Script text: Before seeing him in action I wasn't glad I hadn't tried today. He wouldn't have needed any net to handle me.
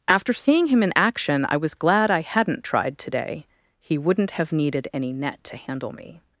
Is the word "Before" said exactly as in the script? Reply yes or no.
no